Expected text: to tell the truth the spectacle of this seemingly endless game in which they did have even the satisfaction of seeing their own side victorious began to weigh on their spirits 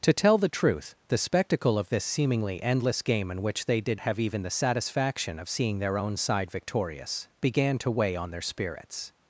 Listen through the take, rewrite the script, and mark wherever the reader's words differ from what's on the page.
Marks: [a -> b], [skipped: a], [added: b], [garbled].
to tell the truth the spectacle of this seemingly endless game in which they did have even the satisfaction of seeing their own side victorious began to weigh on their spirits